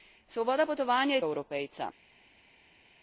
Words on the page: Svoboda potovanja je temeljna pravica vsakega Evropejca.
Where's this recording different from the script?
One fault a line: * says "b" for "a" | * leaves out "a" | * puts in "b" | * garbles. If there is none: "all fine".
* leaves out "temeljna pravica vsakega"